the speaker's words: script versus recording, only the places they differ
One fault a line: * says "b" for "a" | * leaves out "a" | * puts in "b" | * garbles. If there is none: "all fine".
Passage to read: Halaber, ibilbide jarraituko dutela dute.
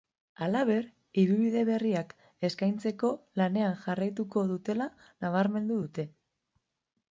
* puts in "berriak eskaintzeko lanean"
* puts in "nabarmendu"